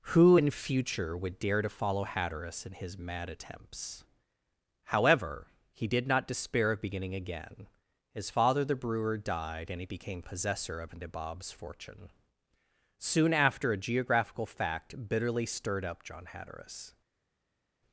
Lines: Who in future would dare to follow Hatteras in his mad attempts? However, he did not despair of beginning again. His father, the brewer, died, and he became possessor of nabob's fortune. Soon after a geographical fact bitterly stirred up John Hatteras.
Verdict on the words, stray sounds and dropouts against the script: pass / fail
pass